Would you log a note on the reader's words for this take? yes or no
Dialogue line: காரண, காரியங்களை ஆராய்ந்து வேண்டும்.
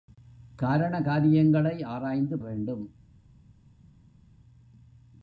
no